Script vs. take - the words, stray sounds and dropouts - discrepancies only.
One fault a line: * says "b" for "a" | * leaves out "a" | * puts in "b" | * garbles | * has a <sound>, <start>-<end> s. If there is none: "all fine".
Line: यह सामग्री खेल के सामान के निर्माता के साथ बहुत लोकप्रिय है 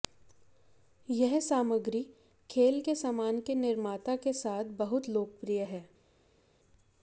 all fine